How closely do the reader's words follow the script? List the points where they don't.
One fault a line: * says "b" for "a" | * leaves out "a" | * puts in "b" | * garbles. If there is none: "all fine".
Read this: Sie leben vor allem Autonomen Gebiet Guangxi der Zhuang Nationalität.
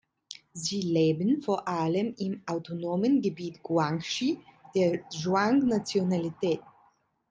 * puts in "im"